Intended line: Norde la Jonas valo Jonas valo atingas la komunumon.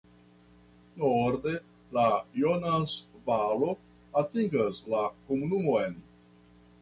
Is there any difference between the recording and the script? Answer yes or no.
yes